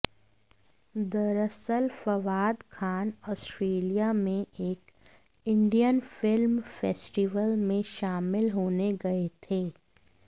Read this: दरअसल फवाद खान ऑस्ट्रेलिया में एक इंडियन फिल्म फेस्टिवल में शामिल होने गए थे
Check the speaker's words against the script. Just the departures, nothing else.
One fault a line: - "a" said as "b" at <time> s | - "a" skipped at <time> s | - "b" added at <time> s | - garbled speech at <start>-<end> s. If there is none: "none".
none